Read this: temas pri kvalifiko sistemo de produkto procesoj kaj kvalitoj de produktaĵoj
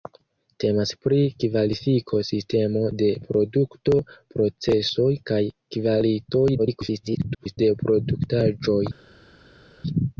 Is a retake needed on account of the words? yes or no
yes